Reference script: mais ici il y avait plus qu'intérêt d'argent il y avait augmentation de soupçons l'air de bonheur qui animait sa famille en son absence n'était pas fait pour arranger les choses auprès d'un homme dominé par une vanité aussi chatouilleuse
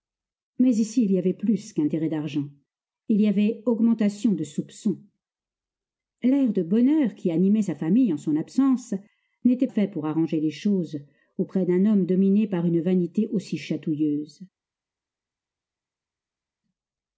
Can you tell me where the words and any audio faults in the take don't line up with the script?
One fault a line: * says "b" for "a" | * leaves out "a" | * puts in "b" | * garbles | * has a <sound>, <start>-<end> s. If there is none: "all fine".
* leaves out "pas"